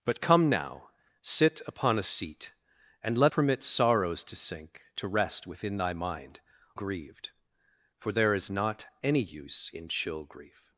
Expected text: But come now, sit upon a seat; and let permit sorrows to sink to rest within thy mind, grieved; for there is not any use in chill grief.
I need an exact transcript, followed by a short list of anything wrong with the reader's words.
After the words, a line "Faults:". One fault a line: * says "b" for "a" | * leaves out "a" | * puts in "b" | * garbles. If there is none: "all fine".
But come now, sit upon a seat; and let permit sorrows to sink to rest within thy mind, grieved; for there is not any use in chill grief.
Faults:
all fine